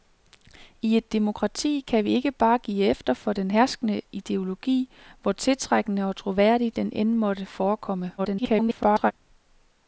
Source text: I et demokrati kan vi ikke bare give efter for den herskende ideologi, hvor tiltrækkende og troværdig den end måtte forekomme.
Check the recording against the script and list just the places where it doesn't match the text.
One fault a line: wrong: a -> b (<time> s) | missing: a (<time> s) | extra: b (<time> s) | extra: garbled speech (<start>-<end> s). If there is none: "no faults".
extra: garbled speech (8.2-9.1 s)